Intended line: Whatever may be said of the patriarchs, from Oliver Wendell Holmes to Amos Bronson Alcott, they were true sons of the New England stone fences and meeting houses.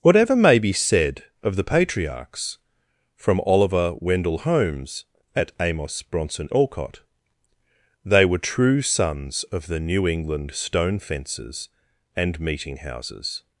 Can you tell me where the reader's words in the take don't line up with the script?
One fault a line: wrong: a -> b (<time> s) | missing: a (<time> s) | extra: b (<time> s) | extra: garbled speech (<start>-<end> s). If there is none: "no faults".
wrong: to -> at (5.3 s)